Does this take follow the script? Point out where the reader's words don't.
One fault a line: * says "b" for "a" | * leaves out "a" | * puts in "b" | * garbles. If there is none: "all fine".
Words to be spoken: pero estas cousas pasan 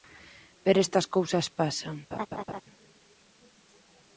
all fine